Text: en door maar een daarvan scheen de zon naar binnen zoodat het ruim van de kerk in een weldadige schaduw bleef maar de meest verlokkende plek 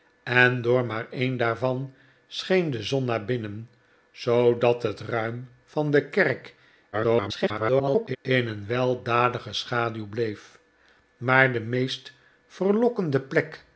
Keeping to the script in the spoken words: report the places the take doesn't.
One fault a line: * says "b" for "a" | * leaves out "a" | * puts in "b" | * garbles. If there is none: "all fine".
* garbles